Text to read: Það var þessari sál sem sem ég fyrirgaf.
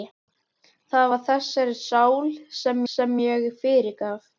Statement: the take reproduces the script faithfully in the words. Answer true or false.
true